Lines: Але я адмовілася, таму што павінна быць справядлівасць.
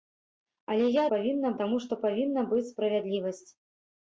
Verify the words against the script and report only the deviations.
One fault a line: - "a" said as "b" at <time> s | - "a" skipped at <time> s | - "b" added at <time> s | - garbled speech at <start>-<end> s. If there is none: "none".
- "адмовілася" said as "павінна" at 1.1 s